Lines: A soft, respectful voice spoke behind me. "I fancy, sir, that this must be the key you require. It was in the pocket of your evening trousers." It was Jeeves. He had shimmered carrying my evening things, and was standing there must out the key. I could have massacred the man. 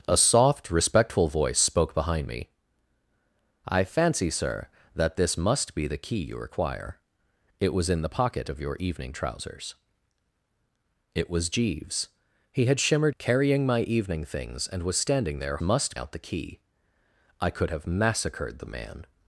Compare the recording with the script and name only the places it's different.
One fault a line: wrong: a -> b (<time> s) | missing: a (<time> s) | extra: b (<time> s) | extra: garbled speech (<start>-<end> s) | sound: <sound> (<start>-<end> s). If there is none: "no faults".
no faults